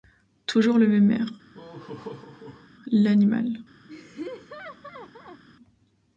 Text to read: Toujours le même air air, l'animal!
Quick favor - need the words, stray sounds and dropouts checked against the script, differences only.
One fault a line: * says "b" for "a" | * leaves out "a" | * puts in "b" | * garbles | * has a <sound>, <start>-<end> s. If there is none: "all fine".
* leaves out "air"
* has a laugh, 1.5-2.7 s
* has a laugh, 3.9-5.4 s